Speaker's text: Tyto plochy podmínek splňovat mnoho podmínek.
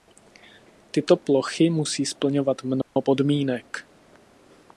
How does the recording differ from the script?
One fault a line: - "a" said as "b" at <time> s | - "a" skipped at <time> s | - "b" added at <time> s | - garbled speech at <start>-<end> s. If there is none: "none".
- "podmínek" said as "musí" at 1.7 s